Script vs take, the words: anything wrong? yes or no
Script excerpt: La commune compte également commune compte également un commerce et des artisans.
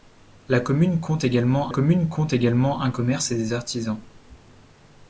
no